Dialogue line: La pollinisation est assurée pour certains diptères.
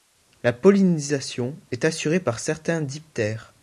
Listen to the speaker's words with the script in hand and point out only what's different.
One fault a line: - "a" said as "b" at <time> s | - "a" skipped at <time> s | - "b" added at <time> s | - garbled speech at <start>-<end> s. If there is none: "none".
- "pour" said as "par" at 2.2 s